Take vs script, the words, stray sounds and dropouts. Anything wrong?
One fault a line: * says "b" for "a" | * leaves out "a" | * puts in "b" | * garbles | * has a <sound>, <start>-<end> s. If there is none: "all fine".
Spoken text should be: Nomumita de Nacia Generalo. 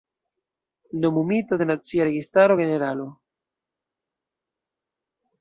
* puts in "Registaro"